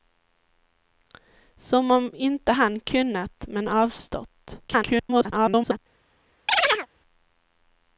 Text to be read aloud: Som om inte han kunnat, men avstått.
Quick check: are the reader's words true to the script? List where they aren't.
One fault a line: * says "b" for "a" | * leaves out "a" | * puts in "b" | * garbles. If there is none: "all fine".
* garbles